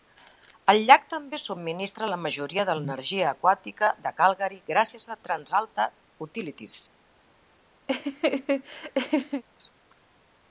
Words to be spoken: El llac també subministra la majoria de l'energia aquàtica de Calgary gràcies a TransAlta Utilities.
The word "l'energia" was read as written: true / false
true